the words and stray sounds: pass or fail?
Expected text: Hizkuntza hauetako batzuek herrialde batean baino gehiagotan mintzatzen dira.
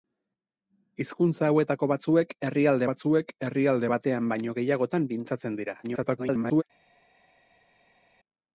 fail